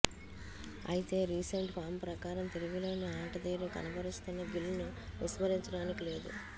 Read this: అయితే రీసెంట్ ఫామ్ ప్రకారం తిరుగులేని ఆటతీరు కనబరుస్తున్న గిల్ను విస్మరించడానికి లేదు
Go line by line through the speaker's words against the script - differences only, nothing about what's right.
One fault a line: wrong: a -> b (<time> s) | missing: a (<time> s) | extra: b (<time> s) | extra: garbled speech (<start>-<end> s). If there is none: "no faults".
no faults